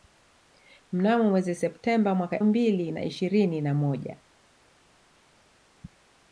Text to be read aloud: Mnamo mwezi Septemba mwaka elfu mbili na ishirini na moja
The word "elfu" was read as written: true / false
false